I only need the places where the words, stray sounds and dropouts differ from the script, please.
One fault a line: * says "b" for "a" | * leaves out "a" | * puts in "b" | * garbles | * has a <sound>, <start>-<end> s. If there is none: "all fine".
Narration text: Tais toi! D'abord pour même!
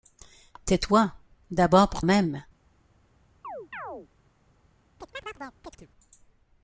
* has a chirp, 3.4-4.1 s
* has a chirp, 5.0-5.9 s